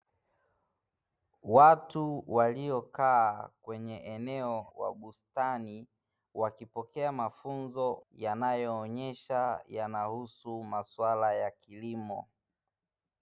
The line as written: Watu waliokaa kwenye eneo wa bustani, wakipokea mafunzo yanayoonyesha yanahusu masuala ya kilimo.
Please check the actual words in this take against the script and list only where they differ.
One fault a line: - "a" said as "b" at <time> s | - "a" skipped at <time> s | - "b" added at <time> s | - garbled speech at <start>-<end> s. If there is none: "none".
none